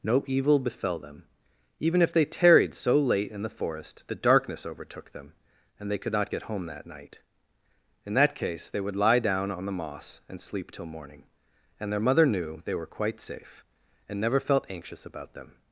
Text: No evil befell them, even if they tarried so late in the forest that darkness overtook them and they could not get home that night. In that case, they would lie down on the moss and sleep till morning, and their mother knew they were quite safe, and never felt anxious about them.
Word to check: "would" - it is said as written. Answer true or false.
true